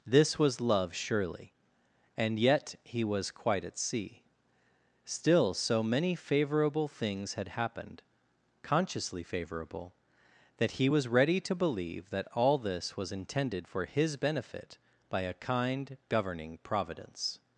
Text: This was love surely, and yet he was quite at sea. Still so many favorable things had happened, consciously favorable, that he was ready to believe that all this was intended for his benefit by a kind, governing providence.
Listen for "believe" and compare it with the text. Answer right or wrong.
right